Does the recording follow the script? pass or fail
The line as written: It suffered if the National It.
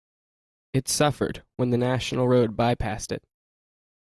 fail